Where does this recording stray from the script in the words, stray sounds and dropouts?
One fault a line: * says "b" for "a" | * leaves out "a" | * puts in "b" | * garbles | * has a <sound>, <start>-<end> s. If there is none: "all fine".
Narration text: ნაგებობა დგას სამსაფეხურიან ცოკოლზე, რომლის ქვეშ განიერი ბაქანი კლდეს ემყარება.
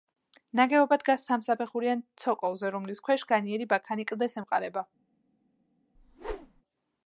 * has a whoosh, 5.9-6.6 s